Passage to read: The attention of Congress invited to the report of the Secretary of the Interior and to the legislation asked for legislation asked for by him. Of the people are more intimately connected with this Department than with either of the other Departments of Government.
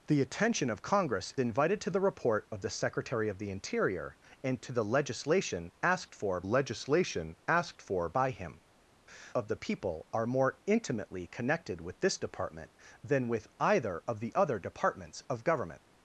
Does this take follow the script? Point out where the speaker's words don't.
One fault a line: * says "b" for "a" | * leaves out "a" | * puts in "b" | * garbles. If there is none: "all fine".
all fine